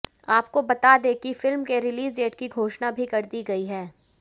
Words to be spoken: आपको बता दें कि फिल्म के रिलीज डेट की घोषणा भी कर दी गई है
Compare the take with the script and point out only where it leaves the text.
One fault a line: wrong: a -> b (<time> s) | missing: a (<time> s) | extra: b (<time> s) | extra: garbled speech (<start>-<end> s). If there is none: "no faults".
no faults